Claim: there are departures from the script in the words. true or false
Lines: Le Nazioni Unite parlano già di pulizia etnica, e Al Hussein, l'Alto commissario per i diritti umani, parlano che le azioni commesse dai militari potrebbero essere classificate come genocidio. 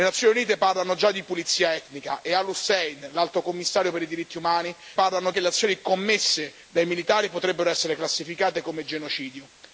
false